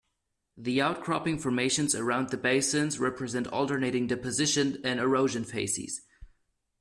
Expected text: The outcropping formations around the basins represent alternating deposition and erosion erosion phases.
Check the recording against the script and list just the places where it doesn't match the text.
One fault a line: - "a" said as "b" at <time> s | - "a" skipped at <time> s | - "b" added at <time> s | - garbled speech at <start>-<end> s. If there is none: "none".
- "erosion" skipped at 5.4 s